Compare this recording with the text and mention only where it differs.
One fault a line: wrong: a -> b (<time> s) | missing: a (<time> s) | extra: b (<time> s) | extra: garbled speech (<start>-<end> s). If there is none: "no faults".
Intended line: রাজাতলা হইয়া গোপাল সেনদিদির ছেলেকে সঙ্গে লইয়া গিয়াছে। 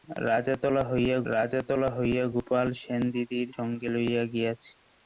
extra: রাজাতলা হইয়া (1.3 s)
missing: ছেলেকে (3.5 s)